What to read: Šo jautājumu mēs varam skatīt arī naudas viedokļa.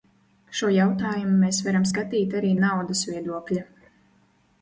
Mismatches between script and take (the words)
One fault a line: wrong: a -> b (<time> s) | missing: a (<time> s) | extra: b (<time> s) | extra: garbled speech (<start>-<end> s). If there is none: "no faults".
no faults